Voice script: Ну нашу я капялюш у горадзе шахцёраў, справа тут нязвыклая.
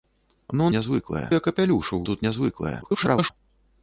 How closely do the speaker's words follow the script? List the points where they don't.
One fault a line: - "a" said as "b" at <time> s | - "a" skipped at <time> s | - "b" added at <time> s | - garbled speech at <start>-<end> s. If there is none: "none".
- "нашу" said as "нязвыклая" at 0.8 s
- "горадзе шахцёраў справа" skipped at 2.0 s
- garbled speech at 2.8-3.3 s